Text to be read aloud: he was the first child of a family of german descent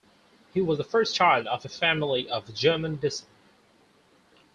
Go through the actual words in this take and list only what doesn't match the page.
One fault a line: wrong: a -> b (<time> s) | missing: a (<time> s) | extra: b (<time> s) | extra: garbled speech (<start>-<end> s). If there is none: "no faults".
no faults